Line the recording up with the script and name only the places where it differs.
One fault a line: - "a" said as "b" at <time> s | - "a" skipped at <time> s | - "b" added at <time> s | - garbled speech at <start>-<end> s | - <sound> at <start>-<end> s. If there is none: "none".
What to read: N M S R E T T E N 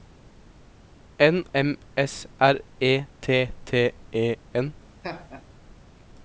- laugh at 5.0-5.4 s